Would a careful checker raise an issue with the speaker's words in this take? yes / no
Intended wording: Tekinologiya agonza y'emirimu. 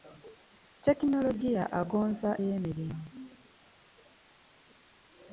no